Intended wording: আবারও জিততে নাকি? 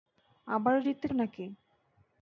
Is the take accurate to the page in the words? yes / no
yes